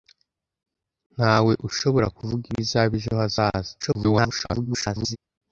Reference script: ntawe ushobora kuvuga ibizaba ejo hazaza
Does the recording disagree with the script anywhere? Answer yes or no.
yes